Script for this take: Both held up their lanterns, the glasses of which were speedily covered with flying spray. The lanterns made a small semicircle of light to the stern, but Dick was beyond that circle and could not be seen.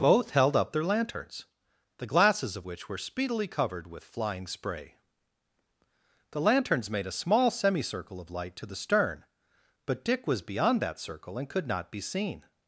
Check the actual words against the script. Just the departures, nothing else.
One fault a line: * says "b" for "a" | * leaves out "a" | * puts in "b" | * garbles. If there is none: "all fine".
all fine